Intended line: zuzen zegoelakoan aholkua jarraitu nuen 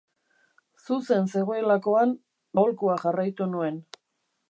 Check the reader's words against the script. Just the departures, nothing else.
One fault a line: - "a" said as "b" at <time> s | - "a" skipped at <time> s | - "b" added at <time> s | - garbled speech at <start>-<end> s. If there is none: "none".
none